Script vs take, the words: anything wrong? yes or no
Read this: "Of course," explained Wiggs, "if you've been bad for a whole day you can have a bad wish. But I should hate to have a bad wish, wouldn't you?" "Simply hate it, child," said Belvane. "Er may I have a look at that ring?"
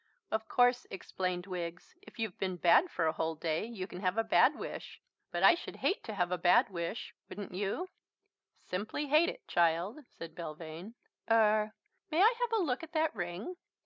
no